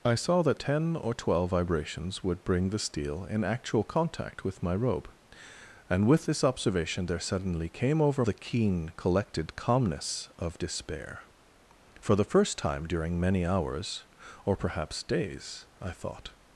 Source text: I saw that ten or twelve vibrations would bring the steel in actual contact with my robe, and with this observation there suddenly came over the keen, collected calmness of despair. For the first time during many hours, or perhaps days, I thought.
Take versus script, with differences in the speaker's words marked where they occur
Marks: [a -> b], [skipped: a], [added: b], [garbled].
I saw that ten or twelve vibrations would bring the steel in actual contact with my robe, and with this observation there suddenly came over the keen, collected calmness of despair. For the first time during many hours, or perhaps days, I thought.